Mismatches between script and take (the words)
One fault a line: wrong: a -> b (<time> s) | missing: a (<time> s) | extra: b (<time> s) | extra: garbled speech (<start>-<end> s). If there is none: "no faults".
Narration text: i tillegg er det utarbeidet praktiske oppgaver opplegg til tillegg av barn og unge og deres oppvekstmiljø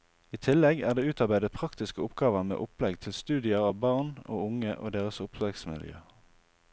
extra: med (2.5 s)
wrong: tillegg -> studier (3.2 s)